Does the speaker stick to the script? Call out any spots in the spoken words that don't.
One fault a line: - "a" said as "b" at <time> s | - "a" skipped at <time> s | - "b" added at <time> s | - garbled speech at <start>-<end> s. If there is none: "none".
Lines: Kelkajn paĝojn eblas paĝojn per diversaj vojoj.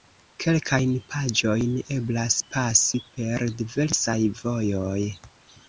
- "paĝojn" said as "pasi" at 2.6 s